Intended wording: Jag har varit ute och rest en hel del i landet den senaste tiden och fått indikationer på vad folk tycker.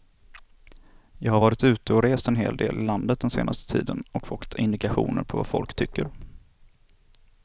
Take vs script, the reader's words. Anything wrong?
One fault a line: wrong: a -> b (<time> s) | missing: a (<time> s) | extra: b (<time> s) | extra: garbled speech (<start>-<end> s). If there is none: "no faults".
no faults